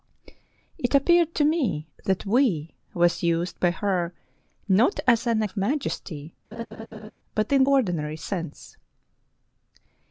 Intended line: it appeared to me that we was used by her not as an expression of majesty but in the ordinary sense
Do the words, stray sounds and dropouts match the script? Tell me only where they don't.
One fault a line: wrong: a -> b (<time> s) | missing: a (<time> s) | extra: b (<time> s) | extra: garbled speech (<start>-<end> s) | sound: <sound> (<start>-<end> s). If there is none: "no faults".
missing: expression (5.4 s)
sound: laugh (6.5-7.1 s)
missing: the (7.6 s)